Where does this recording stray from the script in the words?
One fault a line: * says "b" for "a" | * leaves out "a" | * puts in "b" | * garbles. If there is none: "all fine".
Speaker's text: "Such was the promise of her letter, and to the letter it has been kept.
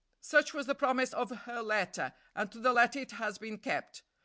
all fine